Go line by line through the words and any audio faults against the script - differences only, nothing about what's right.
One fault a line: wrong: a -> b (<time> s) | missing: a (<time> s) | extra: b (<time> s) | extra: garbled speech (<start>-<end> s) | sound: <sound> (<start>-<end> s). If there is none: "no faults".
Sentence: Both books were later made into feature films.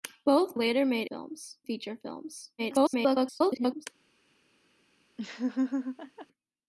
missing: books were (0.6 s)
wrong: into -> films (1.0 s)
extra: garbled speech (2.6-3.9 s)
sound: laugh (5.2-6.3 s)